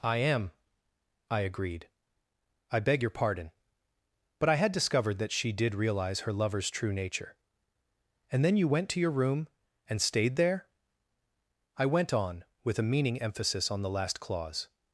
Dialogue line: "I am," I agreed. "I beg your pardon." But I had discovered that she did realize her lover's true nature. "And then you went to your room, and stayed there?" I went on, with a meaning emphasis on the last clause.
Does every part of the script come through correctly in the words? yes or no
yes